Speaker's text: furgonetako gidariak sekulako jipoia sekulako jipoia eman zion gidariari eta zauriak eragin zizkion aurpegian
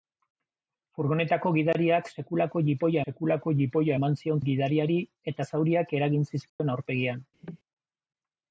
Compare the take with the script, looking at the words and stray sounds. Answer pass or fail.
fail